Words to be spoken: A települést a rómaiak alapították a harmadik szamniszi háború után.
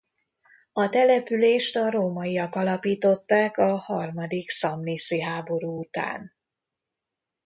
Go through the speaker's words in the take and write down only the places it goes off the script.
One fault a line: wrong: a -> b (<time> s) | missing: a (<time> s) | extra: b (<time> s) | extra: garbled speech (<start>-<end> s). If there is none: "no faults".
no faults